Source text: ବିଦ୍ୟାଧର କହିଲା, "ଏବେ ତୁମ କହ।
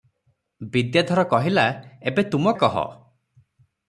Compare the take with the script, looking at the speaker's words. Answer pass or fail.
pass